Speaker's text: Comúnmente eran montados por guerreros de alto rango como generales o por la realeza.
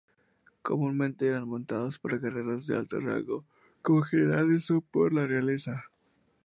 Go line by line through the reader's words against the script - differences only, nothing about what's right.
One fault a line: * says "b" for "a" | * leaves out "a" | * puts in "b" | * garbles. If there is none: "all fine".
all fine